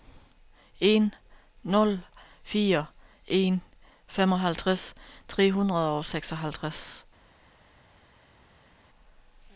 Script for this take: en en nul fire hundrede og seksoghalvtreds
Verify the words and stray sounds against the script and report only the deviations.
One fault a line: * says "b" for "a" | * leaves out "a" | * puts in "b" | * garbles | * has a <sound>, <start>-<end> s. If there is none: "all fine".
* puts in "nul fire"
* says "femoghalvtreds tre" for "nul fire"